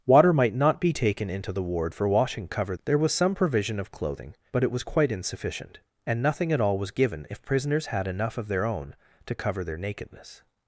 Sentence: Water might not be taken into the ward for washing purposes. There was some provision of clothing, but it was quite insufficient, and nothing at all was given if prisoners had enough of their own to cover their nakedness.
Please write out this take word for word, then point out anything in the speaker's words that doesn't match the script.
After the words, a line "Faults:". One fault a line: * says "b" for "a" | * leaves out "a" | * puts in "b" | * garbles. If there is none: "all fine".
Water might not be taken into the ward for washing cover. There was some provision of clothing, but it was quite insufficient, and nothing at all was given if prisoners had enough of their own to cover their nakedness.
Faults:
* says "cover" for "purposes"